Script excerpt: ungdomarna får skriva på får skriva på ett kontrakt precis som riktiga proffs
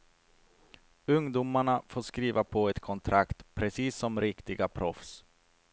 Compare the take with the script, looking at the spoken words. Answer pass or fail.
fail